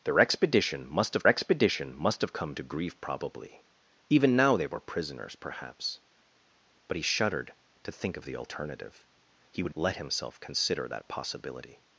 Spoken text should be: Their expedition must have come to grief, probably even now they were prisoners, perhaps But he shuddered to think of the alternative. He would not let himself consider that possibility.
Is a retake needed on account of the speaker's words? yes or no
yes